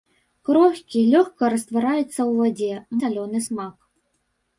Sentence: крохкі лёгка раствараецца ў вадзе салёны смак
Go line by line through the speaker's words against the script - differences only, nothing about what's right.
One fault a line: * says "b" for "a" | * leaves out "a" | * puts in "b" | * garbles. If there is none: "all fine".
all fine